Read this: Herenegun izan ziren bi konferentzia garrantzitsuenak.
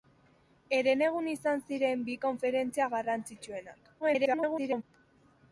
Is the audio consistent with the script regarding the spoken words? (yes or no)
no